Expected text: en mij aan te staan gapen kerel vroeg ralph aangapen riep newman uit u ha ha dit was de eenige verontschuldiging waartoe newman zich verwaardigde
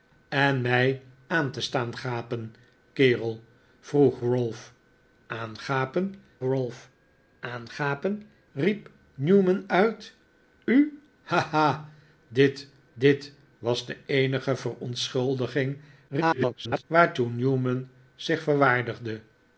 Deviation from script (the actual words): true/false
true